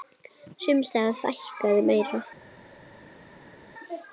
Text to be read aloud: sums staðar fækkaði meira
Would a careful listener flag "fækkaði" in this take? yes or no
no